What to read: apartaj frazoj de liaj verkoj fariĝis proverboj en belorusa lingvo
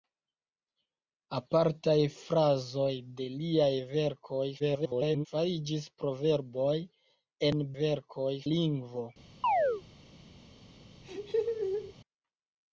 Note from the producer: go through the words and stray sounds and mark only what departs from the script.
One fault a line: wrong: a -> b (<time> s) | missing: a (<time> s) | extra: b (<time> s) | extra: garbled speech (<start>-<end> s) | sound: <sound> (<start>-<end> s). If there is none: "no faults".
extra: garbled speech (4.6-5.3 s)
wrong: belorusa -> verkoj (7.8 s)
sound: chirp (9.4-9.8 s)
sound: laugh (11.0-11.9 s)